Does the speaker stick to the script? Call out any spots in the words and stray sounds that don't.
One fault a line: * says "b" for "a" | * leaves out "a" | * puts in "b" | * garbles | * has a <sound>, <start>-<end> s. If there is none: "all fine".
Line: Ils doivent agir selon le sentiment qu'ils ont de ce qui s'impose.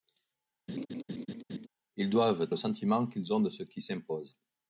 * has a laugh, 0.7-1.7 s
* leaves out "agir selon"